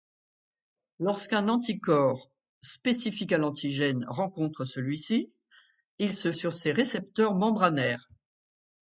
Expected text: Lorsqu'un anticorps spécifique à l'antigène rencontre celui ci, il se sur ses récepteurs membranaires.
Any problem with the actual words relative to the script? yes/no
no